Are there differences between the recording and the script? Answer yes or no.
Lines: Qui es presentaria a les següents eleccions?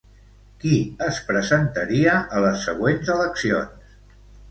no